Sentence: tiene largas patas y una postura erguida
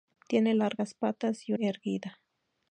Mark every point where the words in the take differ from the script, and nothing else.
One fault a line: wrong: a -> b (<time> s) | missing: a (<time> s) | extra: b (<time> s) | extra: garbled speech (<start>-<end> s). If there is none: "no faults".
missing: una postura (1.5 s)